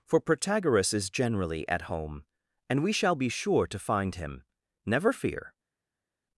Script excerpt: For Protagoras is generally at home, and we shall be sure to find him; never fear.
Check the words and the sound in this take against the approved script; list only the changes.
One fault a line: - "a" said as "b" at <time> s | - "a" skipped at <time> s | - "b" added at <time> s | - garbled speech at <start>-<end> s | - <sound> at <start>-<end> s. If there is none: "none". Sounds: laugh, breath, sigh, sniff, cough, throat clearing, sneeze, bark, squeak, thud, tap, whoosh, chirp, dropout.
none